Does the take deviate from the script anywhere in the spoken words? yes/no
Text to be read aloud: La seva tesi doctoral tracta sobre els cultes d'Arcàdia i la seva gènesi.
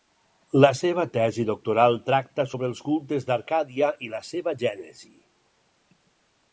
no